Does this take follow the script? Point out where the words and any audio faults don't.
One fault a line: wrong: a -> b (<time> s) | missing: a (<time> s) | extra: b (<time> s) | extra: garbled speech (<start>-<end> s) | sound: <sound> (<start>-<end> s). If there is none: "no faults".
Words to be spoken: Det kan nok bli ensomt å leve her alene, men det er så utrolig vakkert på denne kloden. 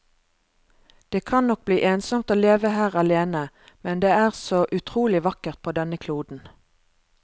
no faults